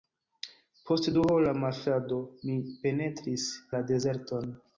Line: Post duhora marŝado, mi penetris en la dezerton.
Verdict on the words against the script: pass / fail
fail